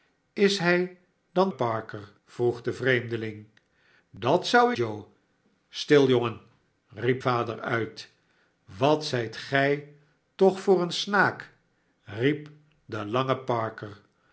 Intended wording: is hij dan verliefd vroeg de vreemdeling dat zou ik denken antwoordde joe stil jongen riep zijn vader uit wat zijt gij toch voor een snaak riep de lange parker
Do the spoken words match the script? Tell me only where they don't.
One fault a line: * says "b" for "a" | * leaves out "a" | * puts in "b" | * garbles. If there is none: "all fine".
* says "parker" for "verliefd"
* leaves out "ik denken antwoordde"
* leaves out "zijn"